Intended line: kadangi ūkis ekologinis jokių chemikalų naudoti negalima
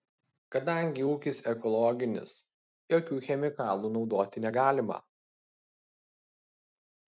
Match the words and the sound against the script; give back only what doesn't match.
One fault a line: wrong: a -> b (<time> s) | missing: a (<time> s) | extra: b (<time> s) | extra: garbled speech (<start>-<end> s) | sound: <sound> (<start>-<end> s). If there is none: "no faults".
no faults